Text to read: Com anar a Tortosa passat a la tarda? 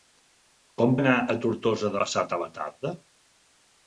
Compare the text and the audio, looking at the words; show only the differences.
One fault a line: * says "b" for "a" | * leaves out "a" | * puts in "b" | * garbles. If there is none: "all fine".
all fine